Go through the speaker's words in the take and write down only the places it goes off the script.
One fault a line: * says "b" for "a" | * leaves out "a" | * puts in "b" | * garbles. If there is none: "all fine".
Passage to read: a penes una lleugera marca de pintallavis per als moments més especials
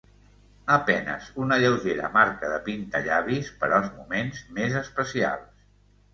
all fine